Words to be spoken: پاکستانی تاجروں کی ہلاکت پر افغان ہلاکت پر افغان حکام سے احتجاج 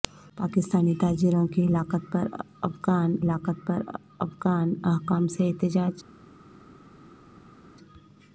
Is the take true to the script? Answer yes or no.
yes